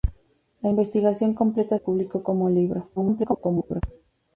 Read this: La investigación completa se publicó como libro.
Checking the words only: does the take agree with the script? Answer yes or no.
no